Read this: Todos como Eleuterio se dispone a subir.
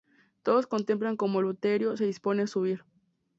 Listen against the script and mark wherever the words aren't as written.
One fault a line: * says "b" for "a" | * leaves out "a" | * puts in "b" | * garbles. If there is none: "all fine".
* puts in "contemplan"